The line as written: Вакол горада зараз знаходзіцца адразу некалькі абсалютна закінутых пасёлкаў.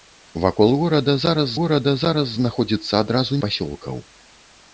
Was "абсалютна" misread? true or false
true